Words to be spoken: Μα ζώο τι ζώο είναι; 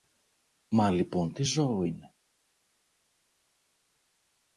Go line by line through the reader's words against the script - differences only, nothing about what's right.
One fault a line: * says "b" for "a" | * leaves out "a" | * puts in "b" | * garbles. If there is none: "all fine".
* says "λοιπόν" for "ζώο"